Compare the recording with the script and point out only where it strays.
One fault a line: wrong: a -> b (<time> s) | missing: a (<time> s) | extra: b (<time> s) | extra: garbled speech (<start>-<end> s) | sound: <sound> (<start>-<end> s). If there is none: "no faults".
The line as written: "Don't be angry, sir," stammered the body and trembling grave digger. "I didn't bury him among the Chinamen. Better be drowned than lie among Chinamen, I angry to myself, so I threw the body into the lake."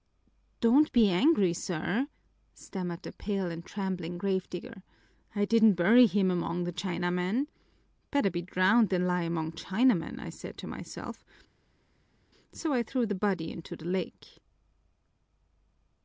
wrong: body -> pale (3.1 s)
wrong: angry -> said (10.3 s)